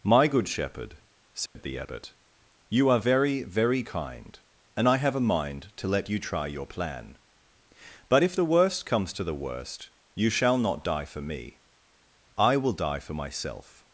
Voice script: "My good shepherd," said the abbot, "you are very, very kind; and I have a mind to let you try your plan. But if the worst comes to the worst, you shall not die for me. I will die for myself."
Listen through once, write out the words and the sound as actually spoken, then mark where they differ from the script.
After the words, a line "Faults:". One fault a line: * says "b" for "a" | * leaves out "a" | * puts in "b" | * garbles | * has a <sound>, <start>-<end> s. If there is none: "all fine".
"My good shepherd," said the abbot, "you are very, very kind; and I have a mind to let you try your plan. But if the worst comes to the worst, you shall not die for me. I will die for myself."
Faults:
* has a dropout, 1.5-1.6 s